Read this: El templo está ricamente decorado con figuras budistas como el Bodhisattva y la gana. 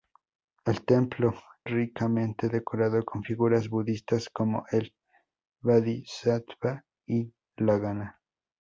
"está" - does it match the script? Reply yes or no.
no